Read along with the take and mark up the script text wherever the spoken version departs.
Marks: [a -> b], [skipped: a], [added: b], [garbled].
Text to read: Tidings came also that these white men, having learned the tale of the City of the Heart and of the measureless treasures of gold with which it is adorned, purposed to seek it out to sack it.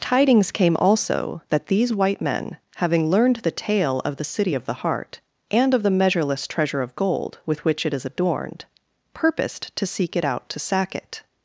Tidings came also that these white men, having learned the tale of the City of the Heart and of the measureless [treasures -> treasure] of gold with which it is adorned, purposed to seek it out to sack it.